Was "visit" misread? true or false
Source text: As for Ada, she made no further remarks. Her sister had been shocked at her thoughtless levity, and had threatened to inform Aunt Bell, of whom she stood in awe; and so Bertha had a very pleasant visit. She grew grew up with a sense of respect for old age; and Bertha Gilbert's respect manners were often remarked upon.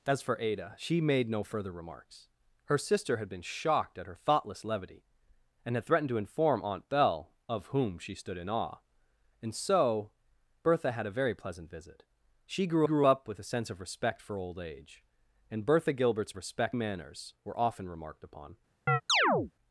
false